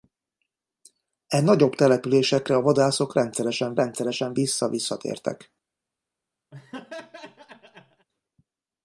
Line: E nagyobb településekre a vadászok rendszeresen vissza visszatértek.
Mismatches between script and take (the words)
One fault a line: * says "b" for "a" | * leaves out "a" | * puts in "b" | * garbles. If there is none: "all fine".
* puts in "rendszeresen"